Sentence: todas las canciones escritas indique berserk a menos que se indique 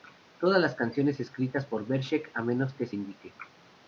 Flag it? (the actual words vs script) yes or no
yes